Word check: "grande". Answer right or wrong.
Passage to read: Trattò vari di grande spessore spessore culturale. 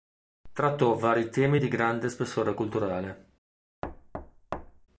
right